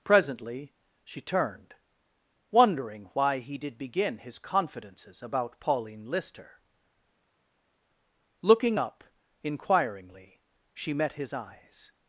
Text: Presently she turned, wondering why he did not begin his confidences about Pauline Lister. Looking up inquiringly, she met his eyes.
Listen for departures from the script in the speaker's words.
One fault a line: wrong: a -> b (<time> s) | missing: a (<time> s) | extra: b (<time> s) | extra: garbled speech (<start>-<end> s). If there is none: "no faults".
missing: not (3.8 s)